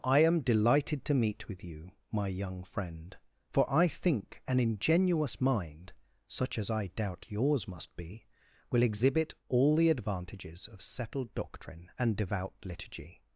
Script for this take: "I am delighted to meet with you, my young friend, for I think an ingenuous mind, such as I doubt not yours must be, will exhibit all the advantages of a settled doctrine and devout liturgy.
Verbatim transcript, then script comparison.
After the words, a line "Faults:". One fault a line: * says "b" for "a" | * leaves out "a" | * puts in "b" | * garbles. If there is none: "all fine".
"I am delighted to meet with you, my young friend, for I think an ingenuous mind, such as I doubt yours must be, will exhibit all the advantages of settled doctrine and devout liturgy.
Faults:
* leaves out "not"
* leaves out "a"